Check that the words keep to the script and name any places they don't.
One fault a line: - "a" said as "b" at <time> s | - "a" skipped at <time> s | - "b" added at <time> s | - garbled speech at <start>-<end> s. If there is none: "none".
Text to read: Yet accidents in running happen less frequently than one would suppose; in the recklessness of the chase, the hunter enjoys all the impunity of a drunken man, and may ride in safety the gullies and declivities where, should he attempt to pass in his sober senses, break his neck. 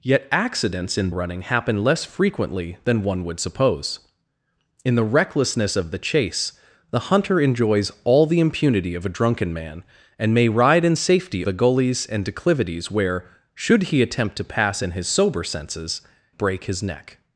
none